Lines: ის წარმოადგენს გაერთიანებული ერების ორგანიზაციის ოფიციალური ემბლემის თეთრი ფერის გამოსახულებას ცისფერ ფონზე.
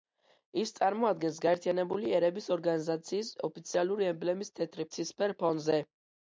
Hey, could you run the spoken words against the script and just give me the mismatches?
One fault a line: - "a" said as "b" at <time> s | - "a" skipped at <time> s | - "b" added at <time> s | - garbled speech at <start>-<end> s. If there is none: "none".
- "ფერის გამოსახულებას" skipped at 4.9 s